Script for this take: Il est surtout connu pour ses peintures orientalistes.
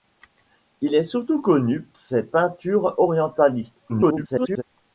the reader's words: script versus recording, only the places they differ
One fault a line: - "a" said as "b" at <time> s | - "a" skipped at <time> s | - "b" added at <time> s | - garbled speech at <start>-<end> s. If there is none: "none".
- "pour" skipped at 1.9 s
- garbled speech at 3.9-4.6 s